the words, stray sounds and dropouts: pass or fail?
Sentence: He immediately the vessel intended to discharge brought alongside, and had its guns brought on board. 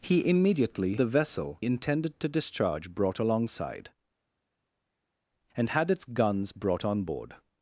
pass